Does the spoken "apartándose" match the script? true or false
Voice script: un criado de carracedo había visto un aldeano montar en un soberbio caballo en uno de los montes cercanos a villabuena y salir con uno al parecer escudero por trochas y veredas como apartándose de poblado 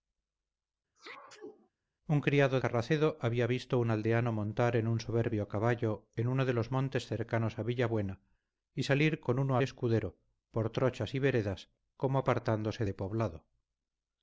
true